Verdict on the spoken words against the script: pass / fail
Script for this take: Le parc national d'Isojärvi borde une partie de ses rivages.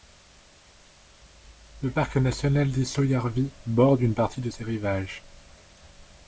pass